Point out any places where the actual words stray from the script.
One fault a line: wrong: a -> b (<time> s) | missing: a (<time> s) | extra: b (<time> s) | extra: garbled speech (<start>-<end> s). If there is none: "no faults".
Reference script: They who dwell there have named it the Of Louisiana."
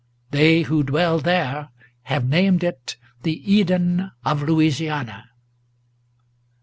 extra: Eden (3.5 s)